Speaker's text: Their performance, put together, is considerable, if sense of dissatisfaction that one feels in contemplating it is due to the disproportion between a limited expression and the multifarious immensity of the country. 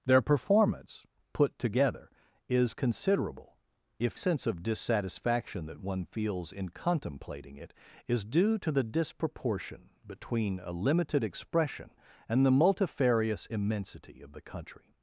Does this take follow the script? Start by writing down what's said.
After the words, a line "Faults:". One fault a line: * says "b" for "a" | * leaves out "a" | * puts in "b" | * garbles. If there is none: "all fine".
Their performance, put together, is considerable, if sense of dissatisfaction that one feels in contemplating it is due to the disproportion between a limited expression and the multifarious immensity of the country.
Faults:
all fine